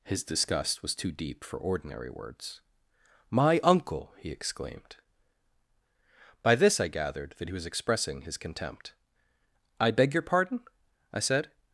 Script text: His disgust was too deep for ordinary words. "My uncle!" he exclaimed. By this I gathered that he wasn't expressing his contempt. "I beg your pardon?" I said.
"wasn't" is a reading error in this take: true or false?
true